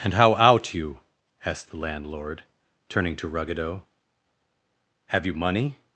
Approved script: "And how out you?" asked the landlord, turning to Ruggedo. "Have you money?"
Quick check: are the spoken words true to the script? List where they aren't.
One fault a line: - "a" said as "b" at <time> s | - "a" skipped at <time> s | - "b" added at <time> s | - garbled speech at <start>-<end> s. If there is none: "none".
none